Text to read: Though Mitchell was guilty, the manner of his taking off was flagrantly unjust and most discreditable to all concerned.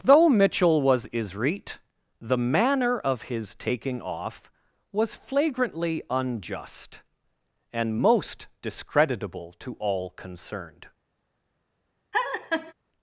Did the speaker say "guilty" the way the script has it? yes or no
no